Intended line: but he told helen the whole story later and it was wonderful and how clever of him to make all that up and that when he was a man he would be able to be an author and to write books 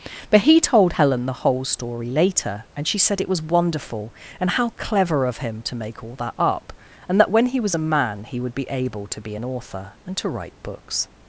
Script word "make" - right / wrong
right